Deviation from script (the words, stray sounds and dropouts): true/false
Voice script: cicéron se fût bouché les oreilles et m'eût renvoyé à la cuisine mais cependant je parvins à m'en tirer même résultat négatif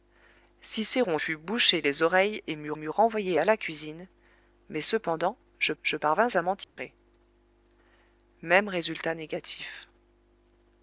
true